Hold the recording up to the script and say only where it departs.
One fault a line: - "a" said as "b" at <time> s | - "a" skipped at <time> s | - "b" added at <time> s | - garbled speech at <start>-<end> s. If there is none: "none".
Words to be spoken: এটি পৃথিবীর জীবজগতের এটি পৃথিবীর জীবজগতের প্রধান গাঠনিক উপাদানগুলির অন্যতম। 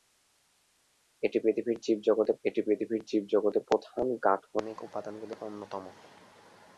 none